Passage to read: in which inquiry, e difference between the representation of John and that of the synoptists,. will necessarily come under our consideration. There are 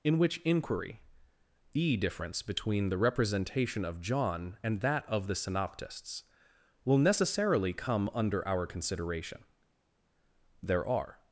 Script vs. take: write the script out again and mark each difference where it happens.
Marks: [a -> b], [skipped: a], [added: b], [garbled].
in which inquiry, e difference between the representation of John and that of the synoptists,. will necessarily come under our consideration. There are